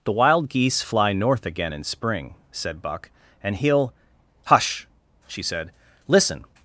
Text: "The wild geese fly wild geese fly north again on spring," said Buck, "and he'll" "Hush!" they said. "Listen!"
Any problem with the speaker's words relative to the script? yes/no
yes